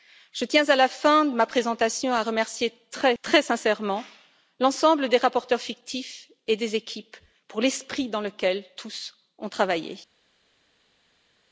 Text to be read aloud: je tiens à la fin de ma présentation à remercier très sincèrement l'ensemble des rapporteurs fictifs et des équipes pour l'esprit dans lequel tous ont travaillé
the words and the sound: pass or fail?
pass